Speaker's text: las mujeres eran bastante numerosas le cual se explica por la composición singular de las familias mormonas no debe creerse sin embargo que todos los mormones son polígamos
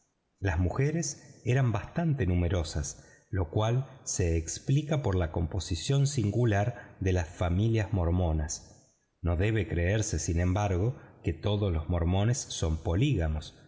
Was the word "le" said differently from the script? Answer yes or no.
yes